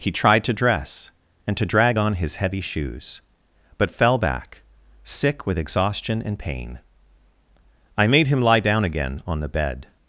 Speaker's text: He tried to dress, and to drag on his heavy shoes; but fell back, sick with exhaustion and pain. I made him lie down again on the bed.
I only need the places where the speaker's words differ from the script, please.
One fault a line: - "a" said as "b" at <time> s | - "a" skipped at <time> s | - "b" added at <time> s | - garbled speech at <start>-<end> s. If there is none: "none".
none